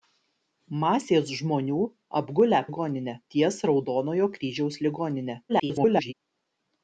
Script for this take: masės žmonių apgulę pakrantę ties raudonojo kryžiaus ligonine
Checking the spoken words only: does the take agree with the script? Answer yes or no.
no